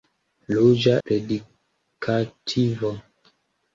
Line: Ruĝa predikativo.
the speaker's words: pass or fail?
pass